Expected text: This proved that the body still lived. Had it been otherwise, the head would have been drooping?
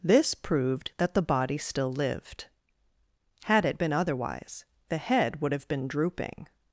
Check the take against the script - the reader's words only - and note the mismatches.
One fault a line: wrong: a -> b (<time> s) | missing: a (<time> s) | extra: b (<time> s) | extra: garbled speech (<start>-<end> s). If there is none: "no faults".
no faults